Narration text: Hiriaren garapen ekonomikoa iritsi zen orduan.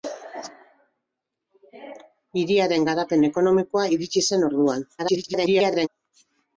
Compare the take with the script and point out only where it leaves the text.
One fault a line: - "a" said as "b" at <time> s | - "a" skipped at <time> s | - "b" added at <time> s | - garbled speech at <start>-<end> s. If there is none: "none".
- garbled speech at 5.0-5.9 s